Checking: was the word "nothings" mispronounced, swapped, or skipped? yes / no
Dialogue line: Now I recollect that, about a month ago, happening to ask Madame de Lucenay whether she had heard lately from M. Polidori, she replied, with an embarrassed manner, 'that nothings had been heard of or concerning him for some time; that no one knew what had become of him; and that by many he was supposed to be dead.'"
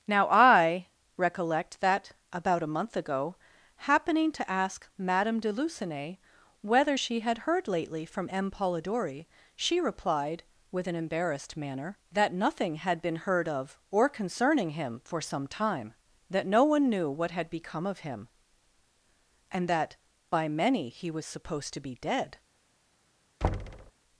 yes